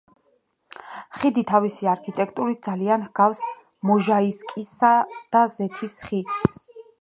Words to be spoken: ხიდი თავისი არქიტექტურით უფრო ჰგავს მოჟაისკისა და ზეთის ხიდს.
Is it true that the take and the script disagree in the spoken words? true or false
true